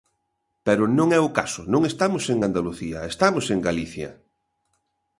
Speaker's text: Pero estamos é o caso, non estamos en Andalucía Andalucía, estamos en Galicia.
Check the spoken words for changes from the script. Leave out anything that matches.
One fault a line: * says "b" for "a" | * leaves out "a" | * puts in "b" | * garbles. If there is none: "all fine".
* says "non" for "estamos"
* leaves out "Andalucía"